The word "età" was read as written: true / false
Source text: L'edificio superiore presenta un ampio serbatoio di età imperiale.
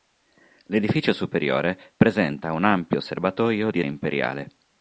false